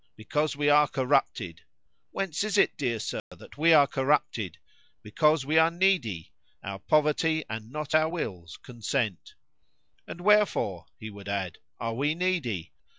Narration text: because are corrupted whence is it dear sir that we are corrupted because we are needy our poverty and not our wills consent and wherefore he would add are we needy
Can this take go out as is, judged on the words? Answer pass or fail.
fail